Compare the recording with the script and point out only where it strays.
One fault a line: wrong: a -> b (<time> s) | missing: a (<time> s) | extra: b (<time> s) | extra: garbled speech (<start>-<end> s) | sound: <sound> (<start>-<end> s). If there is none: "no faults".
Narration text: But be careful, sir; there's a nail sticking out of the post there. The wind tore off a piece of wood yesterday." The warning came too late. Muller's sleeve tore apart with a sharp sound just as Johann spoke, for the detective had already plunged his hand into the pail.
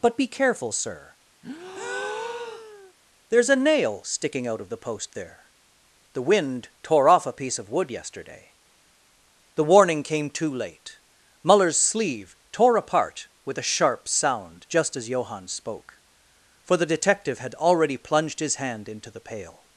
sound: breath (1.4-2.9 s)